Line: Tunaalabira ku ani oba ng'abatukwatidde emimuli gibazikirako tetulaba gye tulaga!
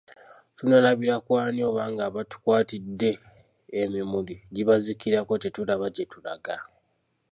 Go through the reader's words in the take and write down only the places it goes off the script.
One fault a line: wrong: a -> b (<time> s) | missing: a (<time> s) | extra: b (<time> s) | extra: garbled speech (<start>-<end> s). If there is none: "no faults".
no faults